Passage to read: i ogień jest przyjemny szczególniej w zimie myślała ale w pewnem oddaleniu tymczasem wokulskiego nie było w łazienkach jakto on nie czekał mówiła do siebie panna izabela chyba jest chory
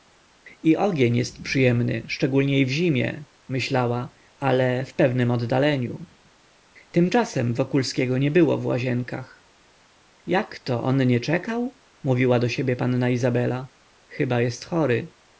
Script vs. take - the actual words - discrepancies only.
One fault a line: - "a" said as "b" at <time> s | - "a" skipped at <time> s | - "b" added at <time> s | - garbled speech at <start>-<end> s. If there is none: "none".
none